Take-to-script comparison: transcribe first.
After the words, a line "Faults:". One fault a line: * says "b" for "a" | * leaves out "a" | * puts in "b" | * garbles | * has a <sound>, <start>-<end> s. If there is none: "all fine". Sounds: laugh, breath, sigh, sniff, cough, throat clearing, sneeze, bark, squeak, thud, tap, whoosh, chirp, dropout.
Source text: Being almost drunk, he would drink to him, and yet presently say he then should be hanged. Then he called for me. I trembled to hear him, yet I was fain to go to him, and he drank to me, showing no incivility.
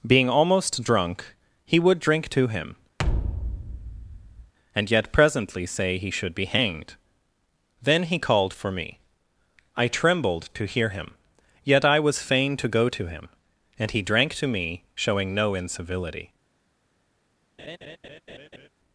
Being almost drunk, he would drink to him, and yet presently say he should be hanged. Then he called for me. I trembled to hear him, yet I was fain to go to him, and he drank to me, showing no incivility.
Faults:
* has a thud, 3.0-4.5 s
* leaves out "then"
* has a laugh, 17.6-18.7 s